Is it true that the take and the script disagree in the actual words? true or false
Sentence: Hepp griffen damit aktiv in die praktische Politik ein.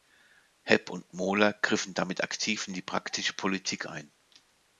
true